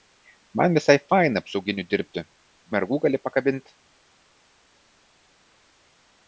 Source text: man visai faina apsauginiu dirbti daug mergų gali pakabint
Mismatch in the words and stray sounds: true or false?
true